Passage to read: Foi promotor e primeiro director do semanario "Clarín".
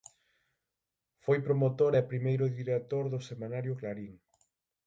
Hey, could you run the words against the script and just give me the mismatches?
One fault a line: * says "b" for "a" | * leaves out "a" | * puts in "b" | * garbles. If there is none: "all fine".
all fine